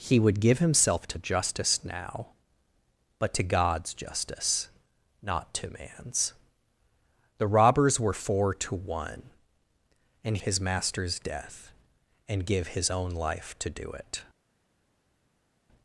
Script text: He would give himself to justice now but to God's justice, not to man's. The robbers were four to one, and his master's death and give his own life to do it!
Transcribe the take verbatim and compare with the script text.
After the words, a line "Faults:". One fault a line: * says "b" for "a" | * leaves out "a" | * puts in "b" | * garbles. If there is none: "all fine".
He would give himself to justice now but to God's justice, not to man's. The robbers were four to one, and his master's death and give his own life to do it!
Faults:
all fine